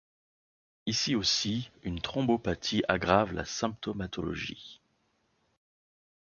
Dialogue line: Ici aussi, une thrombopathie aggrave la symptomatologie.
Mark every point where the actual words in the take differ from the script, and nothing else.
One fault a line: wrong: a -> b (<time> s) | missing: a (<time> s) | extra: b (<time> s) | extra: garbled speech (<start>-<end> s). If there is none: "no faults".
no faults